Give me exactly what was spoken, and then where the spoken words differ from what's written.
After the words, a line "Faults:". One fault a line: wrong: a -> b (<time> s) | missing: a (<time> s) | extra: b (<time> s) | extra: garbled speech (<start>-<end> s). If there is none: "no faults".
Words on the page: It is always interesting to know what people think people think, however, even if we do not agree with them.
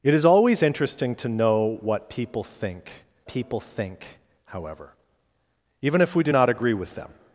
It is always interesting to know what people think people think, however, even if we do not agree with them.
Faults:
no faults